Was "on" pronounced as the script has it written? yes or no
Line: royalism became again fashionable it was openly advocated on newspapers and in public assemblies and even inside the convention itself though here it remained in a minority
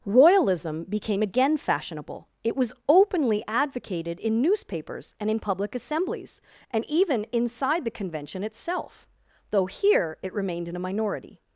no